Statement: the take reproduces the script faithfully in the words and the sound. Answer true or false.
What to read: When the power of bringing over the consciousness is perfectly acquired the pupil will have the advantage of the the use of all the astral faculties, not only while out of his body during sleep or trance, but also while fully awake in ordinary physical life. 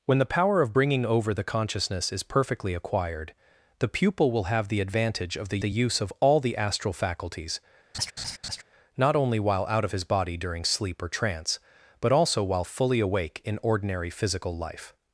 false